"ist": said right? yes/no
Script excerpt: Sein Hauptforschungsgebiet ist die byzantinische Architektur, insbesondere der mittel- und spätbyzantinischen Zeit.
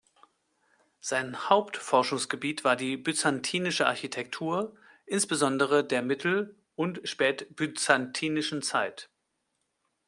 no